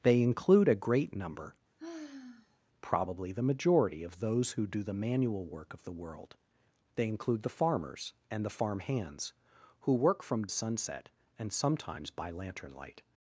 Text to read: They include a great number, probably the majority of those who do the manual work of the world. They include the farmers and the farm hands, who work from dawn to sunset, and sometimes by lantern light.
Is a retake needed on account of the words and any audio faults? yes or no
yes